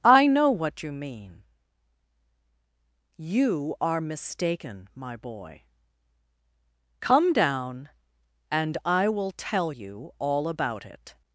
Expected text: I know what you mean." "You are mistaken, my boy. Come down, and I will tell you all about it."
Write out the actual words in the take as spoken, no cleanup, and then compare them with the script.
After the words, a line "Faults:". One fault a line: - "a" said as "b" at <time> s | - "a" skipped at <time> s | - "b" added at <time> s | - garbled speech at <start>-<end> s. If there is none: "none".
I know what you mean." "You are mistaken, my boy. Come down, and I will tell you all about it."
Faults:
none